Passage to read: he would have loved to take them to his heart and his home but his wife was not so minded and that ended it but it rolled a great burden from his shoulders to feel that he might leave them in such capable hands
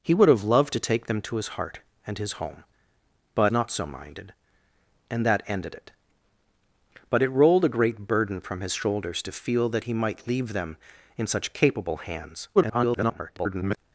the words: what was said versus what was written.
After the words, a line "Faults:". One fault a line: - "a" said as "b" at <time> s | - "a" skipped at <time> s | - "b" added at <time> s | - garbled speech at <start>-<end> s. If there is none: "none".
he would have loved to take them to his heart and his home but not so minded and that ended it but it rolled a great burden from his shoulders to feel that he might leave them in such capable hands [garbled]
Faults:
- "his wife was" skipped at 3.5 s
- garbled speech at 12.5-13.8 s